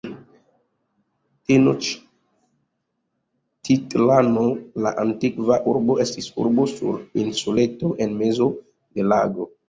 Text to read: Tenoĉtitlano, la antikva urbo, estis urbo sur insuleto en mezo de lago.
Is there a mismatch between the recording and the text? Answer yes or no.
no